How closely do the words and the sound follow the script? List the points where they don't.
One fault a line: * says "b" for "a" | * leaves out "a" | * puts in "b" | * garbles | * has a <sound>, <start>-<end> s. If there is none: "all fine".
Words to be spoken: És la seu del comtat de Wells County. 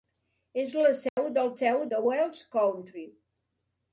* has a dropout, 1.1-1.2 s
* says "seu" for "comtat"